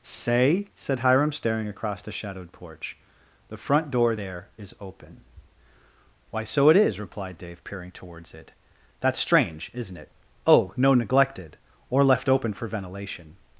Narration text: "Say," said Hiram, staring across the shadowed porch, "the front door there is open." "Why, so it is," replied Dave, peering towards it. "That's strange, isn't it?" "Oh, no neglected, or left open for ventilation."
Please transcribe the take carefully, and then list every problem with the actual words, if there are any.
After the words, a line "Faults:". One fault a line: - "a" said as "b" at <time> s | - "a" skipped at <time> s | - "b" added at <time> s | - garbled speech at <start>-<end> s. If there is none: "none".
"Say," said Hiram, staring across the shadowed porch, "the front door there is open." "Why, so it is," replied Dave, peering towards it. "That's strange, isn't it?" "Oh, no neglected, or left open for ventilation."
Faults:
none